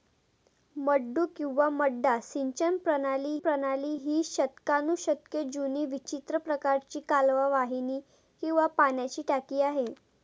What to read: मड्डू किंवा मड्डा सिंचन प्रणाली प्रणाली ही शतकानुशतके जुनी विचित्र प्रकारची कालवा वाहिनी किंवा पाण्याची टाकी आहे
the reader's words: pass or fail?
pass